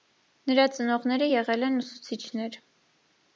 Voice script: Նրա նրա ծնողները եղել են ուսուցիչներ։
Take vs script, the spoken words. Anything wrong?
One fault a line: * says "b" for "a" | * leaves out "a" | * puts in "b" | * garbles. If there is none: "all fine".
* leaves out "նրա"